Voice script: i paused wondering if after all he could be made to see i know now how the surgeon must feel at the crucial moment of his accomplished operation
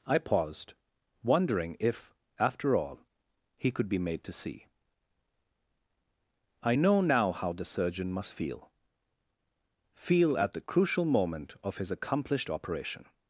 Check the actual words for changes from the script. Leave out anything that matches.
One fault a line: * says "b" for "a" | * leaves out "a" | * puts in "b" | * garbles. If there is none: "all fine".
* puts in "feel"